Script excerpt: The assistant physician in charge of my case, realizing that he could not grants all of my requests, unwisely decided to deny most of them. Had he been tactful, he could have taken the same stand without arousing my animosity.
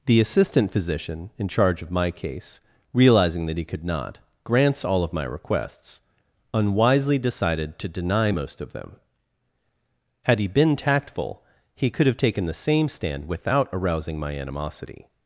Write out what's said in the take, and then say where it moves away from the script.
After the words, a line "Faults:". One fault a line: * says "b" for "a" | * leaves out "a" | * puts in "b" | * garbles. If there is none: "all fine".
The assistant physician in charge of my case, realizing that he could not grants all of my requests, unwisely decided to deny most of them. Had he been tactful, he could have taken the same stand without arousing my animosity.
Faults:
all fine